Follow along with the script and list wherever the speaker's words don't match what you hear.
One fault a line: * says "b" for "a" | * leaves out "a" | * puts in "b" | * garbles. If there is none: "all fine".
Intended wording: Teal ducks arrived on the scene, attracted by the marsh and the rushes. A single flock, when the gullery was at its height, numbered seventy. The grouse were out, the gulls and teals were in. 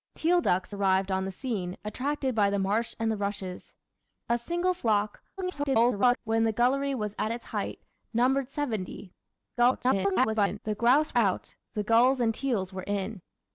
* garbles
* garbles
* leaves out "were"